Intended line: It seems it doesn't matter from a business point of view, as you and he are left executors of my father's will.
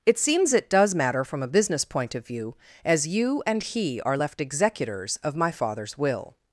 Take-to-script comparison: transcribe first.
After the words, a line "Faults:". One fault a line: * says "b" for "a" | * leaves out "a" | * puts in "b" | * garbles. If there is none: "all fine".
It seems it does matter from a business point of view, as you and he are left executors of my father's will.
Faults:
* says "does" for "doesn't"